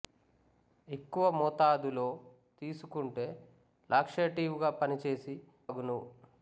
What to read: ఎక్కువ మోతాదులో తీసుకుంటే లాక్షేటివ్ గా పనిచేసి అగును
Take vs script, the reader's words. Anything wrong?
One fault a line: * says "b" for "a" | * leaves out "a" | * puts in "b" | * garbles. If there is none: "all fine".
all fine